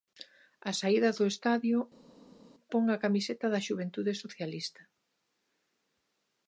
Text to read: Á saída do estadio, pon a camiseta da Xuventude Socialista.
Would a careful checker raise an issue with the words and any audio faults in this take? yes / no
no